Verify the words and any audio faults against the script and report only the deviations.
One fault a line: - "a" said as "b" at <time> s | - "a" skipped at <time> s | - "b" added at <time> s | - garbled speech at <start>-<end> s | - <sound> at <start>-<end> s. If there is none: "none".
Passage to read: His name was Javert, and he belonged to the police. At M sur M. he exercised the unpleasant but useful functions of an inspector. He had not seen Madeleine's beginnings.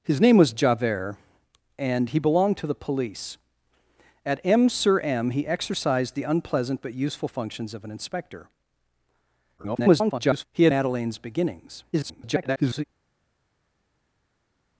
- garbled speech at 9.6-10.5 s
- "not seen" skipped at 10.7 s
- garbled speech at 11.9-12.8 s